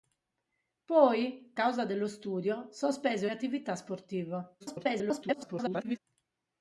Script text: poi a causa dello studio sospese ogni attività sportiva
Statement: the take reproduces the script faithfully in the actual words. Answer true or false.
false